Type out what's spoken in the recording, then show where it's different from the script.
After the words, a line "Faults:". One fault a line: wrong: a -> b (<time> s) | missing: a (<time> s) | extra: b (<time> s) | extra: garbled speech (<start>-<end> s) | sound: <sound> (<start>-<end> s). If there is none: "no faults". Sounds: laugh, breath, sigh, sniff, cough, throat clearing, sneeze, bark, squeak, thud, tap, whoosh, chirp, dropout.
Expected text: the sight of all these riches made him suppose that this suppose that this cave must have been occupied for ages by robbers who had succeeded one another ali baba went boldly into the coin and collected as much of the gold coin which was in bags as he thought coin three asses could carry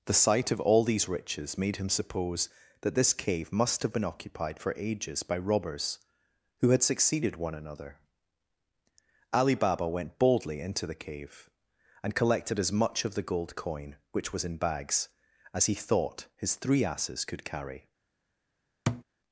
the sight of all these riches made him suppose that this cave must have been occupied for ages by robbers who had succeeded one another ali baba went boldly into the cave and collected as much of the gold coin which was in bags as he thought his three asses could carry
Faults:
missing: suppose that this (3.1 s)
wrong: coin -> cave (10.9 s)
wrong: coin -> his (16.4 s)
sound: thud (18.9-19.0 s)